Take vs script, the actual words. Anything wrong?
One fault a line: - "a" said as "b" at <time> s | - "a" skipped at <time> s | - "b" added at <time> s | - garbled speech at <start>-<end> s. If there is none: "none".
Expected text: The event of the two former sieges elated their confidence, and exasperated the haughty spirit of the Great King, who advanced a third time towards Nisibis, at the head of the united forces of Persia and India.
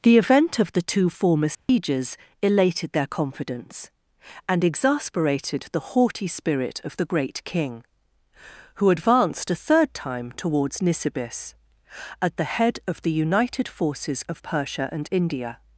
none